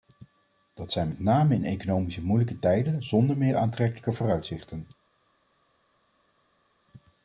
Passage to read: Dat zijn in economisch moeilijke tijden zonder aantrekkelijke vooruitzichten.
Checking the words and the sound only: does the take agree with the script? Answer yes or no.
no